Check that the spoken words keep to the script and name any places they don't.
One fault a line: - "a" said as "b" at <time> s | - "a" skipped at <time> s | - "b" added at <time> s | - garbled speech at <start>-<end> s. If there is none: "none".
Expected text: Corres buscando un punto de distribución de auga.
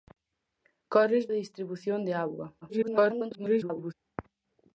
- "buscando un punto" skipped at 1.3 s
- garbled speech at 2.6-3.9 s